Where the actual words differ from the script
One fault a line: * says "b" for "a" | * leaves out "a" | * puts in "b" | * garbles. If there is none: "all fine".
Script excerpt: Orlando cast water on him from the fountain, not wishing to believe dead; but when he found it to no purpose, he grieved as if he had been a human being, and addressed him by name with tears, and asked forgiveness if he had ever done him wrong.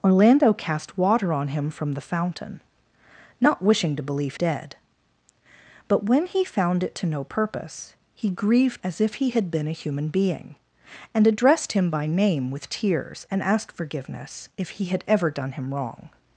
all fine